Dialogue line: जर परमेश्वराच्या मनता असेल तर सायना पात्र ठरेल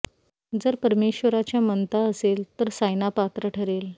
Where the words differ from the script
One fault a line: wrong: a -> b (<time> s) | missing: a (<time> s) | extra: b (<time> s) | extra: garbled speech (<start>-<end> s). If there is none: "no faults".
no faults